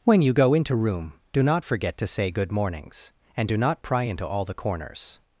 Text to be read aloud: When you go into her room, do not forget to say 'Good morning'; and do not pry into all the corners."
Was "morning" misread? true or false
true